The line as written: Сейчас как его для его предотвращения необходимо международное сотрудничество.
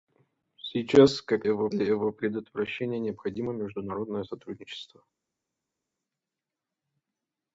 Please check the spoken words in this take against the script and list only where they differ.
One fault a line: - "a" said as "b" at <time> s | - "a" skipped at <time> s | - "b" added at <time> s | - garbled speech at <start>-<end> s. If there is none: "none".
none